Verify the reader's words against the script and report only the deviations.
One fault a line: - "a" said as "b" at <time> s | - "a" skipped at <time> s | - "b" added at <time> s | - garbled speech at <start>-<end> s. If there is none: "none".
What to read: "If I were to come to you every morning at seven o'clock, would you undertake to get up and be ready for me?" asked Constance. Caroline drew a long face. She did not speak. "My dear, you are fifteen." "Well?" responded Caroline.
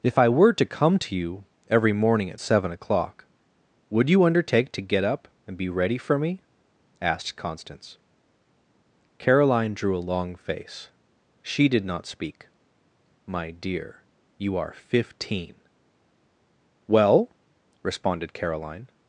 none